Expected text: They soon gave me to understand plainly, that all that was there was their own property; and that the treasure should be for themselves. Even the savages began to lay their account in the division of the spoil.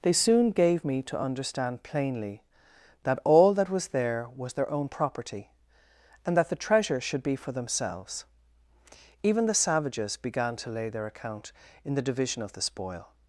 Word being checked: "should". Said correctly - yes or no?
yes